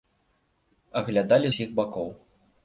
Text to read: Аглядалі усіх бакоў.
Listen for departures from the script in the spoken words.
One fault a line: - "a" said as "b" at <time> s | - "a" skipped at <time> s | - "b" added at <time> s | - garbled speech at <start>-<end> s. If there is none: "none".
none